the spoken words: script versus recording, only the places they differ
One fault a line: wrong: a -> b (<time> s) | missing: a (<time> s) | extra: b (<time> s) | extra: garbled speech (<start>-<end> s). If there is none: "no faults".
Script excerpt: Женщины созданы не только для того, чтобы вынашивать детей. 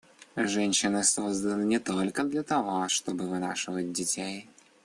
no faults